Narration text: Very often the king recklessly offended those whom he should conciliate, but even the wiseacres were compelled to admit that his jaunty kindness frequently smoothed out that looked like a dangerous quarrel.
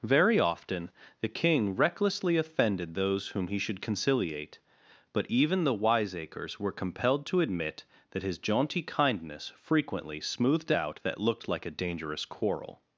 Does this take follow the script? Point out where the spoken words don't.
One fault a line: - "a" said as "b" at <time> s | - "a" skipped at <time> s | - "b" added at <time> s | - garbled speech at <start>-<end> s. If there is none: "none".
none